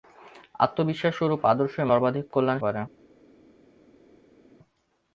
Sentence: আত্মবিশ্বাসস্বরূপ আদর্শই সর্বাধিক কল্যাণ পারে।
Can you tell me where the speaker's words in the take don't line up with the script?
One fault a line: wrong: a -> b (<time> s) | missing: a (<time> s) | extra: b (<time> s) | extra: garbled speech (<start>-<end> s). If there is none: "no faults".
no faults